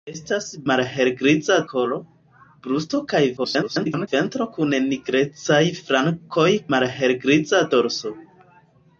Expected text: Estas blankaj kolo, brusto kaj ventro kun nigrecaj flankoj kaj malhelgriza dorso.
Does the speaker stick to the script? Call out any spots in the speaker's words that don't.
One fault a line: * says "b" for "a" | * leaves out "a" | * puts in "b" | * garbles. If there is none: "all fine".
* says "malhelgriza" for "blankaj"
* garbles
* leaves out "kaj"